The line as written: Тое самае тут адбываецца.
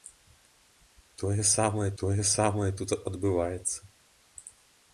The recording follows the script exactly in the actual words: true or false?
false